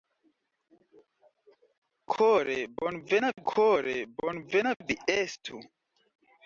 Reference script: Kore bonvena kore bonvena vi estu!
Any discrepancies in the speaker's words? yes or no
no